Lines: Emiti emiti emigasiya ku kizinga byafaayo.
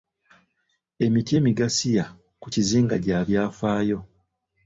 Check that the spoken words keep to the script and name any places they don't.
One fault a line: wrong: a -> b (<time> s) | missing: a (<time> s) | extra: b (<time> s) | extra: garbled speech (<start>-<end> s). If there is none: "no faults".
missing: emiti (1.3 s)
extra: gya (3.0 s)